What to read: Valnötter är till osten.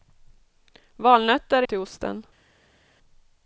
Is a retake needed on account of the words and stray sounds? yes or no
no